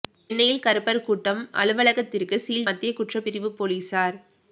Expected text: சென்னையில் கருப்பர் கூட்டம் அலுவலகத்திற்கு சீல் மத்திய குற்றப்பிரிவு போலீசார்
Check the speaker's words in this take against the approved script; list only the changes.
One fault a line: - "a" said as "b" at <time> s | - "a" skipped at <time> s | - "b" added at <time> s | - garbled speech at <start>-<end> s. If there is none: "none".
none